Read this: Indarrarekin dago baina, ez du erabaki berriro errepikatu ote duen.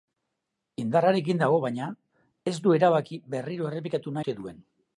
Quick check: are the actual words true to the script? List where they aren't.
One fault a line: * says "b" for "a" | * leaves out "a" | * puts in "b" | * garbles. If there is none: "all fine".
all fine